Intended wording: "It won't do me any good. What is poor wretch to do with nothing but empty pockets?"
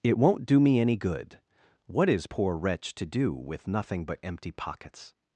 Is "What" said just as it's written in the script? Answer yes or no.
yes